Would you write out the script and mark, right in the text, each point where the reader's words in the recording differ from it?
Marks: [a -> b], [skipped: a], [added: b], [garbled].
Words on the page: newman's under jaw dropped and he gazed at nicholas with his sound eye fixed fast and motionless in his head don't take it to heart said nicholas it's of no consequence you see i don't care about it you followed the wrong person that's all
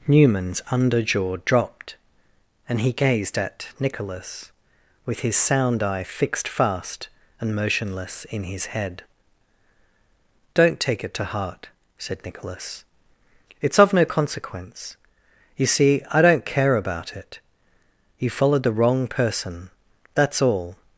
newman's under jaw dropped and he gazed at nicholas with his sound eye fixed fast and motionless in his head don't take it to heart said nicholas it's of no consequence you see i don't care about it you followed the wrong person that's all